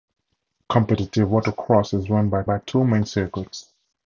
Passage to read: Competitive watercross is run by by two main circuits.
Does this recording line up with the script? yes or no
yes